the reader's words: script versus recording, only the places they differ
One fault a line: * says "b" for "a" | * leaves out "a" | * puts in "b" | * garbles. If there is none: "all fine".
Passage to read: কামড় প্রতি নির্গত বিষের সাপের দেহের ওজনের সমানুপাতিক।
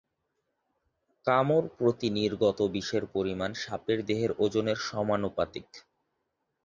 * puts in "পরিমাণ"